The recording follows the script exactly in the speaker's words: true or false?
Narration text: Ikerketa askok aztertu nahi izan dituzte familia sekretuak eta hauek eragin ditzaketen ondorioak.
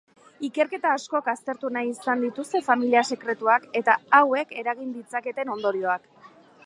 true